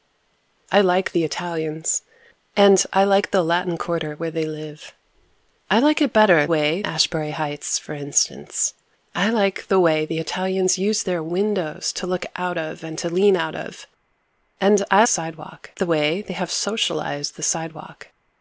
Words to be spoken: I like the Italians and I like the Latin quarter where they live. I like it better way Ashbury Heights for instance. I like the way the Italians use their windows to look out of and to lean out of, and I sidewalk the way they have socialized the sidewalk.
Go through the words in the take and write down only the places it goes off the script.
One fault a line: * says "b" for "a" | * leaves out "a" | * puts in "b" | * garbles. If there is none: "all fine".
all fine